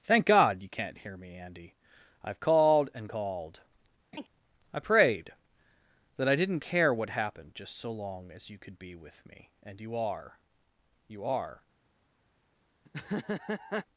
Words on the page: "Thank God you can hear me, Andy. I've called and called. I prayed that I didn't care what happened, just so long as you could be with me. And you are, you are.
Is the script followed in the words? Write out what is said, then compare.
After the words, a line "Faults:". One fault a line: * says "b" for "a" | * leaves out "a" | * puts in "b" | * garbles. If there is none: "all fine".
"Thank God you can't hear me, Andy. I've called and called. I prayed that I didn't care what happened, just so long as you could be with me. And you are, you are.
Faults:
* says "can't" for "can"